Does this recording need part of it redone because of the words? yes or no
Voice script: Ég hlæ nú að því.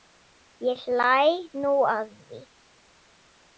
no